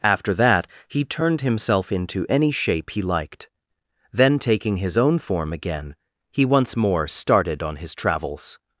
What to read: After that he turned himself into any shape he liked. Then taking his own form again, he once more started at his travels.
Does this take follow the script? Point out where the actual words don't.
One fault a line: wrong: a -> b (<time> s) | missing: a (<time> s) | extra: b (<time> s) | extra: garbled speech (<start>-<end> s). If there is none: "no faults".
wrong: at -> on (7.6 s)